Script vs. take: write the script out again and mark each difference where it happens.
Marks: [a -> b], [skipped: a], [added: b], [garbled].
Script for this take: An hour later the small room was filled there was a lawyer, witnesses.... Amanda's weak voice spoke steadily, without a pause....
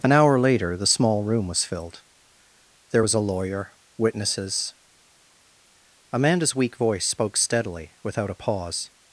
An hour later the small room was filled there was a lawyer, witnesses.... Amanda's weak voice spoke steadily, without a pause....